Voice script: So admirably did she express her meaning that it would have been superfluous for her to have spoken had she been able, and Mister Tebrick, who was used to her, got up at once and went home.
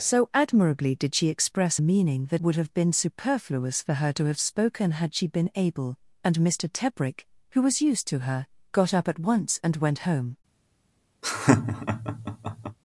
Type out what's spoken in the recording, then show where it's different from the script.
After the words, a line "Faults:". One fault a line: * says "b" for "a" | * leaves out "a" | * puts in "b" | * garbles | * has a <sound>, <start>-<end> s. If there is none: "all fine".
So admirably did she express meaning that would have been superfluous for her to have spoken had she been able, and Mister Tebrick, who was used to her, got up at once and went home.
Faults:
* leaves out "her"
* leaves out "it"
* has a laugh, 11.2-12.8 s